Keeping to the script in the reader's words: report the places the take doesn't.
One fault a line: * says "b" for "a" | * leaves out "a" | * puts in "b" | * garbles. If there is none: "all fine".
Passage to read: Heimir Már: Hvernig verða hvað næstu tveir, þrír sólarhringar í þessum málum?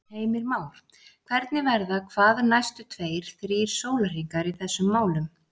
all fine